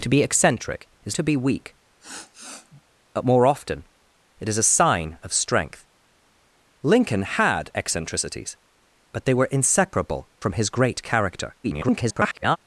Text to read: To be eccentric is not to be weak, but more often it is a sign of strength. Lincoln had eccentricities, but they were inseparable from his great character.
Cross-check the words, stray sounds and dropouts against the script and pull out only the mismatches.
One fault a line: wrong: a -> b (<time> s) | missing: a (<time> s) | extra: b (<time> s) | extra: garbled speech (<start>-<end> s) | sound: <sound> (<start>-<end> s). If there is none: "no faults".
missing: not (1.1 s)
sound: sniff (2.0-2.8 s)
extra: garbled speech (11.6-12.6 s)